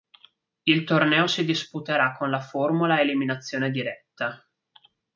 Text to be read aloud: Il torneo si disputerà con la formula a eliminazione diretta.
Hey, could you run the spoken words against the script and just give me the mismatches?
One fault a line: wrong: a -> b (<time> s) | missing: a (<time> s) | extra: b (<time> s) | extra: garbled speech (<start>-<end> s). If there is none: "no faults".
no faults